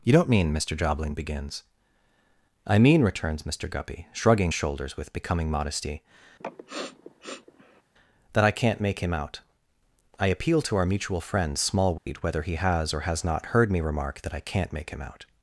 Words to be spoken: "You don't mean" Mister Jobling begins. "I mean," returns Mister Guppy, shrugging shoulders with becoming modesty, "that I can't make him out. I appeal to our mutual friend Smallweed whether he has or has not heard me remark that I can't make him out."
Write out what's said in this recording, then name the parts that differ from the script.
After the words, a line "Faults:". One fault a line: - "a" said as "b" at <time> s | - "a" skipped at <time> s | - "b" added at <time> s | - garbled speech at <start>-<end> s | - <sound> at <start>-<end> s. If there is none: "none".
"You don't mean" Mister Jobling begins. "I mean," returns Mister Guppy, shrugging shoulders with becoming modesty, "that I can't make him out. I appeal to our mutual friend Smallweed whether he has or has not heard me remark that I can't make him out."
Faults:
- sniff at 6.4-7.8 s
- dropout at 12.0-12.1 s